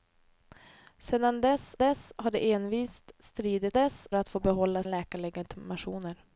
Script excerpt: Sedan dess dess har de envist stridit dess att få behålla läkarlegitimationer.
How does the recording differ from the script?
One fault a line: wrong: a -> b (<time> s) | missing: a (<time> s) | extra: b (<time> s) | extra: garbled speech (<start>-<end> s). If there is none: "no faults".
no faults